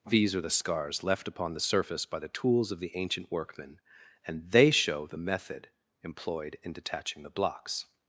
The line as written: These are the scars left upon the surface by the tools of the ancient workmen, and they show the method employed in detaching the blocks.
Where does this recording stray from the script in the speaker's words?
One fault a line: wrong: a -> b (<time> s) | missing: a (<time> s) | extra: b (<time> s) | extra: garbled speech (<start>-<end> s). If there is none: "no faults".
no faults